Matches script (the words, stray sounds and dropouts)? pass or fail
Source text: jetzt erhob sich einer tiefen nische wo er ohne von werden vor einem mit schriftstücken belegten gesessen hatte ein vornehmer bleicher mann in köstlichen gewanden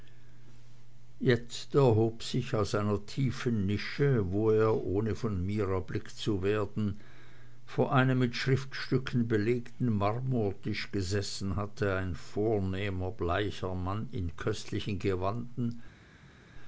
fail